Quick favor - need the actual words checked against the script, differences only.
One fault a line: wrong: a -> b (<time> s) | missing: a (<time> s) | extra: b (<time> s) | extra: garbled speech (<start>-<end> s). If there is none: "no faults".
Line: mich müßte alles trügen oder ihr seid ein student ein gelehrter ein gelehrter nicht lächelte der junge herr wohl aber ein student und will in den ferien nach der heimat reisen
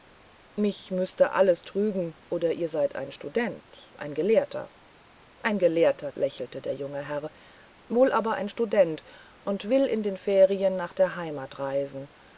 missing: nicht (6.1 s)